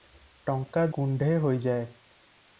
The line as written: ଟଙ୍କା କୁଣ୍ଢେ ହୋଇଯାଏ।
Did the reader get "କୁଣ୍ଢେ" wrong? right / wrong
right